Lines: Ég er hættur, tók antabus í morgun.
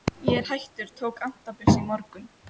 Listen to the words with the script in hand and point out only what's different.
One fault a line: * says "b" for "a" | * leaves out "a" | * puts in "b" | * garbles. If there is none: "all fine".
all fine